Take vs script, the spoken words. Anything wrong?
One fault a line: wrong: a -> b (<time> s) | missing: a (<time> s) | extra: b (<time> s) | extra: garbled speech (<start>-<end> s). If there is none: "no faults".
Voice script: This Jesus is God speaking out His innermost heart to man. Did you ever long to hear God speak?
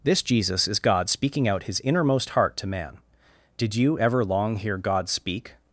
missing: to (4.5 s)